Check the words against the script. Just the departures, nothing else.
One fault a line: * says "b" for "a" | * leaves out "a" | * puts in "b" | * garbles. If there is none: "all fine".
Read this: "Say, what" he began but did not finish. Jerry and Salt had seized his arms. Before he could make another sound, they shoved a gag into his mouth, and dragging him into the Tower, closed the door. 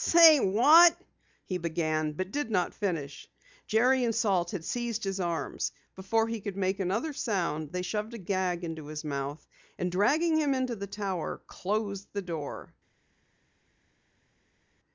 all fine